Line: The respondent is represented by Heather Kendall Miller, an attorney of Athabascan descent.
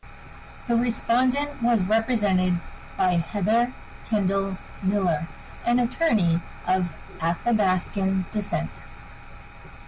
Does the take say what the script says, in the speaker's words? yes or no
no